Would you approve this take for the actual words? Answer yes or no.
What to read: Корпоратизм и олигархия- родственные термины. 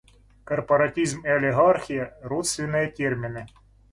yes